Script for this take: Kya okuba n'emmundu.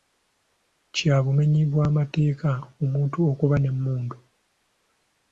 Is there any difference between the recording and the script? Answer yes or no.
yes